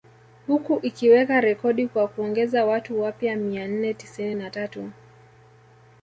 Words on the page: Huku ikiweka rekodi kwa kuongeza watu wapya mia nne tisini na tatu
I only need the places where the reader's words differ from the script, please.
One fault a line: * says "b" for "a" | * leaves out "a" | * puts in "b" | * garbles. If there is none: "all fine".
all fine